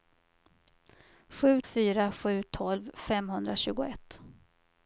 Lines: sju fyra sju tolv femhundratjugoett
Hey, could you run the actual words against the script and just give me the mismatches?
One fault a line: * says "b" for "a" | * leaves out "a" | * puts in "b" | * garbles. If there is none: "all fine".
all fine